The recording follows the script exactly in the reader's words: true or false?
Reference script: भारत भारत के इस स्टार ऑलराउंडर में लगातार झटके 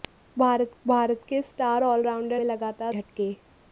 true